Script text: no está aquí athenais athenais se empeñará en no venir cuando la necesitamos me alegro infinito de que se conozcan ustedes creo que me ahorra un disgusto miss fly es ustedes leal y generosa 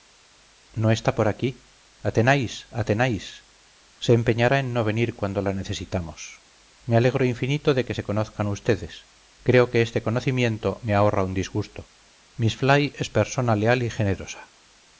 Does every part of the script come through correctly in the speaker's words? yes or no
no